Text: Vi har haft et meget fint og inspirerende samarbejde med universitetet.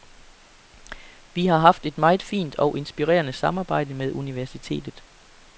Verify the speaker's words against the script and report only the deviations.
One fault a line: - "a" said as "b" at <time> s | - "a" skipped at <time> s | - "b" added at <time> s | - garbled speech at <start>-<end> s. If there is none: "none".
none